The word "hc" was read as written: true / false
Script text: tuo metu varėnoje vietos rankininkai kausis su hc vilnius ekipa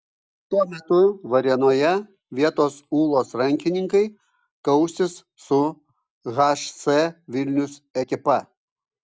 true